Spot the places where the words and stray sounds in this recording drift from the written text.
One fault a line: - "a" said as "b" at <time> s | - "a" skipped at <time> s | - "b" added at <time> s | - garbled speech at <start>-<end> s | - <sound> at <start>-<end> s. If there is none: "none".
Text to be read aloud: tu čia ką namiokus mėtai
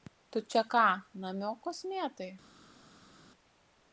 none